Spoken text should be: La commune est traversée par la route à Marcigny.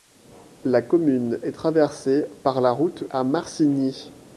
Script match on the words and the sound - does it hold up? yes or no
yes